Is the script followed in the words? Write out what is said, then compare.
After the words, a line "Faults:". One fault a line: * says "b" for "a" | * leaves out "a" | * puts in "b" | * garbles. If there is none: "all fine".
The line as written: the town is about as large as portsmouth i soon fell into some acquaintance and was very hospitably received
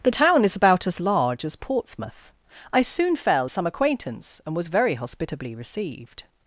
the town is about as large as portsmouth i soon fell some acquaintance and was very hospitably received
Faults:
* leaves out "into"